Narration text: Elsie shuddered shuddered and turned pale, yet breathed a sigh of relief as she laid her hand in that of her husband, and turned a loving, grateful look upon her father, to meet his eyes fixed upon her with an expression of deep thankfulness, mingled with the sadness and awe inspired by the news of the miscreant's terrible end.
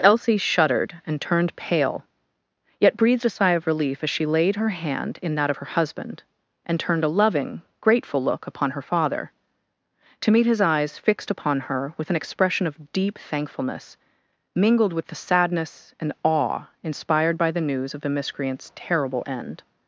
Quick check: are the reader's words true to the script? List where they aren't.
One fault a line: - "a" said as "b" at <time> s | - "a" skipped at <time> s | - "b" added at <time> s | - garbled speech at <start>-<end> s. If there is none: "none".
- "shuddered" skipped at 0.9 s